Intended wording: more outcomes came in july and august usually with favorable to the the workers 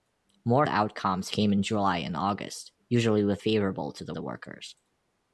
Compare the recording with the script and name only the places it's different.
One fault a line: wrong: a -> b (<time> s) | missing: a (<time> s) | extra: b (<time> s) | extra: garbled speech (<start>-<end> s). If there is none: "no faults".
no faults